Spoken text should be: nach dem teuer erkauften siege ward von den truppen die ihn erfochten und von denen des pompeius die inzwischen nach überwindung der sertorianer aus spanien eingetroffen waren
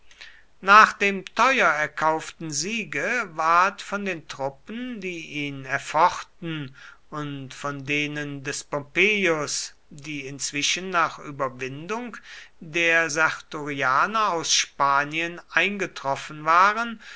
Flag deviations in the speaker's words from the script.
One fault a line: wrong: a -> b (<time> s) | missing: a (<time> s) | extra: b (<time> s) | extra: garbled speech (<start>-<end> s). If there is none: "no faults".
no faults